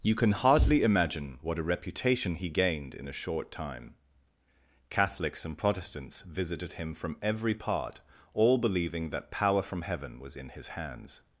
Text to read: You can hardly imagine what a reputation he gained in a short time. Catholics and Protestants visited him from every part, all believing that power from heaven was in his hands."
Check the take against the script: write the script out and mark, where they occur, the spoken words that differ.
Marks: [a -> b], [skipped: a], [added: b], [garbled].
You can hardly imagine what a reputation he gained in a short time. Catholics and Protestants visited him from every part, all believing that power from heaven was in his hands."